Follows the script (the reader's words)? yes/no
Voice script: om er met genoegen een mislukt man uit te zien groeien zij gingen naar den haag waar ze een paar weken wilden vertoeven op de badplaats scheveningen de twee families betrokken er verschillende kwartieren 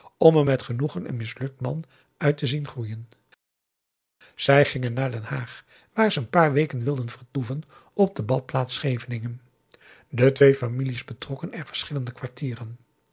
yes